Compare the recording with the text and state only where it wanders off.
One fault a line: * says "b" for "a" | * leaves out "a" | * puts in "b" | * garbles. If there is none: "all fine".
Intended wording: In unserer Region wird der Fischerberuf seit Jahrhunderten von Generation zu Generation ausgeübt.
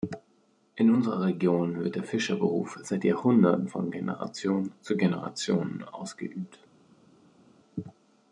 all fine